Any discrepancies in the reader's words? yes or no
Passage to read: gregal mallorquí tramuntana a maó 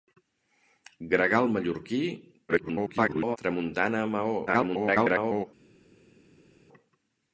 yes